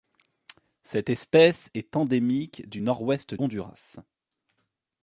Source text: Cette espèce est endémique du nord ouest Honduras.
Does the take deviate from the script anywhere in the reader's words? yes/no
no